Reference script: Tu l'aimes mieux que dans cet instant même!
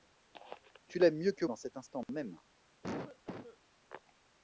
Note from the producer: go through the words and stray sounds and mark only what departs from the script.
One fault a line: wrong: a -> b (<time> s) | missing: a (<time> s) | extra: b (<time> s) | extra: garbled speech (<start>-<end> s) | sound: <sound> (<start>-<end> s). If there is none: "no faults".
sound: cough (2.8-3.6 s)